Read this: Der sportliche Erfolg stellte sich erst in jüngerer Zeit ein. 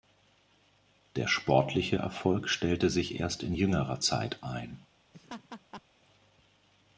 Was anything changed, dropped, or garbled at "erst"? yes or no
no